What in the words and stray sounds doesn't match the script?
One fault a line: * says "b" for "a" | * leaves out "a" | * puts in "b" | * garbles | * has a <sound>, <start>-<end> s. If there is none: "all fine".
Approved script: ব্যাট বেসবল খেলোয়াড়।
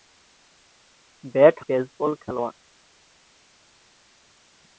all fine